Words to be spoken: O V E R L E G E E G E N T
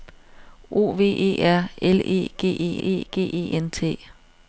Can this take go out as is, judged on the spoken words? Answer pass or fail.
pass